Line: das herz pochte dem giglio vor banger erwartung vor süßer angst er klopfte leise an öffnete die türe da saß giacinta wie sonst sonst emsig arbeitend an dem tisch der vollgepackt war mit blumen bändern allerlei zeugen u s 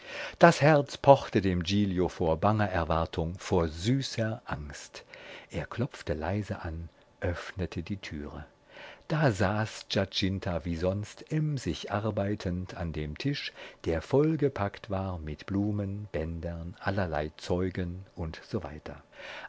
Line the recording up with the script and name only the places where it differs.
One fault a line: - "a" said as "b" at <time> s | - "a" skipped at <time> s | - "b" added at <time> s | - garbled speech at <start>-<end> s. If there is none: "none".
- "sonst" skipped at 11.3 s